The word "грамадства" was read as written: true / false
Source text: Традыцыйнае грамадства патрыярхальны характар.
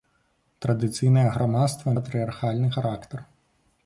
true